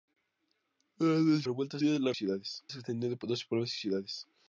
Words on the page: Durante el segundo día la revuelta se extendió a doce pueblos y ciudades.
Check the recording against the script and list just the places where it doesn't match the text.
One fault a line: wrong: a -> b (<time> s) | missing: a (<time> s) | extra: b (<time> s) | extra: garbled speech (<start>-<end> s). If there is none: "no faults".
wrong: segundo -> revuelta (1.4 s)
wrong: revuelta -> ciudades (2.1 s)